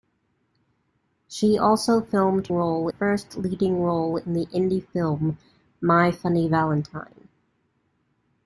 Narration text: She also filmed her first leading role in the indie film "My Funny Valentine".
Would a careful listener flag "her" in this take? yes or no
yes